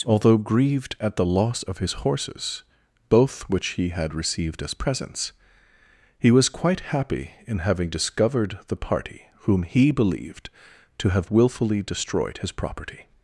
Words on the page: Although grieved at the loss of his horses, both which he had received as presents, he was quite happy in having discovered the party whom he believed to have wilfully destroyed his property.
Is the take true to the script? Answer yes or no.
yes